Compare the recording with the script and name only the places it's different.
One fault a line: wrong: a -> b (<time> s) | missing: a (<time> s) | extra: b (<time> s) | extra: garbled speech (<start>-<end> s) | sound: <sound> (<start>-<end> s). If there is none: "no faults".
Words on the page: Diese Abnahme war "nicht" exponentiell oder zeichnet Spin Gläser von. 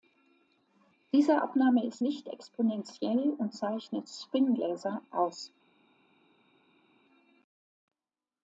wrong: war -> ist (1.9 s)
wrong: oder -> und (3.4 s)
wrong: von -> aus (5.1 s)